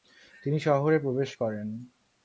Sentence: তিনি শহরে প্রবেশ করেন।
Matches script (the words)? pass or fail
pass